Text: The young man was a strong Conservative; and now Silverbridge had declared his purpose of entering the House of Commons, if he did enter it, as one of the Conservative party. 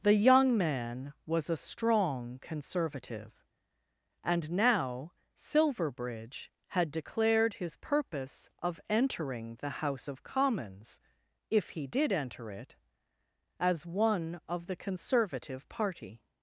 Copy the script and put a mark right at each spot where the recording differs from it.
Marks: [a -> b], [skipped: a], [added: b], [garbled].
The young man was a strong Conservative; and now Silverbridge had declared his purpose of entering the House of Commons, if he did enter it, as one of the Conservative party.